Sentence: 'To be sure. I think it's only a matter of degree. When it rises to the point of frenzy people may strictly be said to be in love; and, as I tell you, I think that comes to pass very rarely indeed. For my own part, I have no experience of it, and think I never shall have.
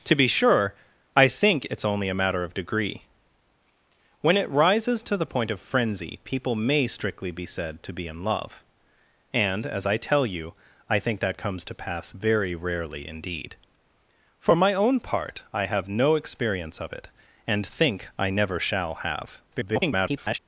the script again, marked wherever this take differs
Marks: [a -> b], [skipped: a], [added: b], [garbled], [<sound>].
'To be sure. I think it's only a matter of degree. When it rises to the point of frenzy people may strictly be said to be in love; and, as I tell you, I think that comes to pass very rarely indeed. For my own part, I have no experience of it, and think I never shall have. [garbled]